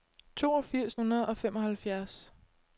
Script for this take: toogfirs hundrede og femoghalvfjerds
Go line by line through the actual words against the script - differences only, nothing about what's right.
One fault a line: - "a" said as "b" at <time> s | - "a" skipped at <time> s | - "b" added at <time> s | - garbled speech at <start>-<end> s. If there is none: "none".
none